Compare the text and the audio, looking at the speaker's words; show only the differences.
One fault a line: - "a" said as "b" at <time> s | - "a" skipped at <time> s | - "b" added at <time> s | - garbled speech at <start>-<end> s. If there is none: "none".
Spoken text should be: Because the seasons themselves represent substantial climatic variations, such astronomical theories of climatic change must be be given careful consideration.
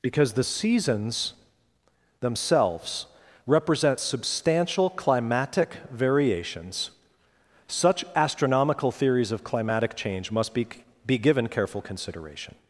none